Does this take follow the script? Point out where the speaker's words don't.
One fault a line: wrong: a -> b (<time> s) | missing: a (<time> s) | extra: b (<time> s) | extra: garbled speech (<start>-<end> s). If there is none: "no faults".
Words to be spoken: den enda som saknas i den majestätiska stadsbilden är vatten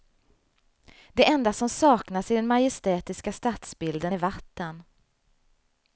wrong: den -> det (1.1 s)